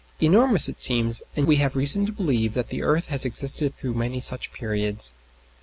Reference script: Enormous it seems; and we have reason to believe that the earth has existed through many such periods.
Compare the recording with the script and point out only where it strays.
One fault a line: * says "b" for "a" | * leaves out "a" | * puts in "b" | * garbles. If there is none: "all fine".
all fine